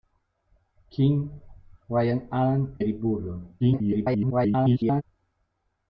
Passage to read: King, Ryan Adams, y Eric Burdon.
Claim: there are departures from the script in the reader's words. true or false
true